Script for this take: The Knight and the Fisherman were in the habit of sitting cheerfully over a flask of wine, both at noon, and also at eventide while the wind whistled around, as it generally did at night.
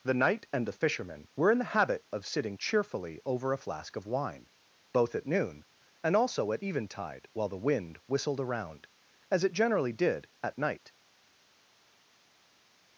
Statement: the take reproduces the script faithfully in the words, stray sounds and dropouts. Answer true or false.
true